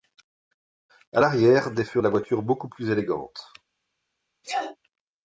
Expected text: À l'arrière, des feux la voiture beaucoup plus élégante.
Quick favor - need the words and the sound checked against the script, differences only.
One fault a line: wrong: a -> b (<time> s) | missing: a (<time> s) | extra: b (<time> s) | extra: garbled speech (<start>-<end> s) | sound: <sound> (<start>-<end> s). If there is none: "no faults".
sound: sneeze (4.4-4.8 s)